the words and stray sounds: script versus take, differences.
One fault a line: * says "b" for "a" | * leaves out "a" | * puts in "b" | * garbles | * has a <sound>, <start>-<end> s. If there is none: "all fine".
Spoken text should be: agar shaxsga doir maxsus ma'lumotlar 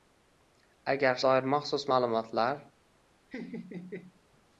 * leaves out "shaxsga"
* has a laugh, 3.3-4.2 s